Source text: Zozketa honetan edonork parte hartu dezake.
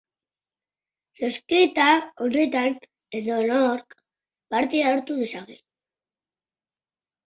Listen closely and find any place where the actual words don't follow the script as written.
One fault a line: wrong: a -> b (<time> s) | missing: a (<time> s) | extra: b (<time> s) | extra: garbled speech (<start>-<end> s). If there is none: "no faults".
no faults